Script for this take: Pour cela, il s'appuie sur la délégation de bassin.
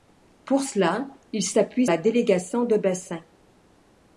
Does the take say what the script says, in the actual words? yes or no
no